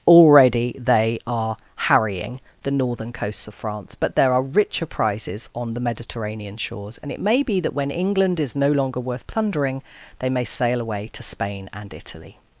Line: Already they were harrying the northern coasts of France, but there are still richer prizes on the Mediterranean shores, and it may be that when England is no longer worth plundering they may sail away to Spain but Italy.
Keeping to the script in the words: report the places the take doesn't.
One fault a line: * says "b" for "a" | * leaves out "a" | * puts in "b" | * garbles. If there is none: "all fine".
* says "are" for "were"
* leaves out "still"
* says "and" for "but"